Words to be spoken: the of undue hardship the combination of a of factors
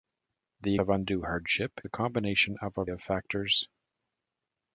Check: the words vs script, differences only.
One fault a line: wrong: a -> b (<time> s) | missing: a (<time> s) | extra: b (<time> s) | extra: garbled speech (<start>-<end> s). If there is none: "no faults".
no faults